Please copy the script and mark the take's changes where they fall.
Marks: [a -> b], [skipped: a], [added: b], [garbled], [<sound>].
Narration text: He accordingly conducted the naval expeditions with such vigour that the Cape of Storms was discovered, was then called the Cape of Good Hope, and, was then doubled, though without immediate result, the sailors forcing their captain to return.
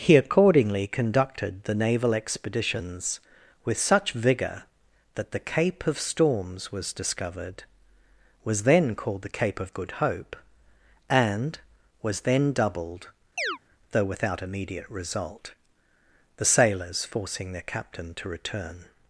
He accordingly conducted the naval expeditions with such vigour that the Cape of Storms was discovered, was then called the Cape of Good Hope, and, was then doubled, [chirp] though without immediate result, the sailors forcing their captain to return.